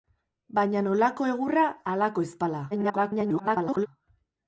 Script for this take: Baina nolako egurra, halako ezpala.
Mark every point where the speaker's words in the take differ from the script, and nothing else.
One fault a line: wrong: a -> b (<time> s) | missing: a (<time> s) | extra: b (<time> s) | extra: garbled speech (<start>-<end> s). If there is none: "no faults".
extra: garbled speech (2.7-3.9 s)